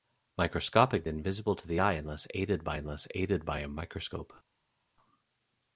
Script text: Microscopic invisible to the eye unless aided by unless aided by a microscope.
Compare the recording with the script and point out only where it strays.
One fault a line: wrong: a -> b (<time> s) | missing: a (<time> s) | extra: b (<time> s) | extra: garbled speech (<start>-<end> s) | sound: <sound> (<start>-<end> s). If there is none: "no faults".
no faults